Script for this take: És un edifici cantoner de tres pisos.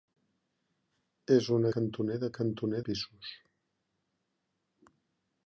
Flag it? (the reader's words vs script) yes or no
yes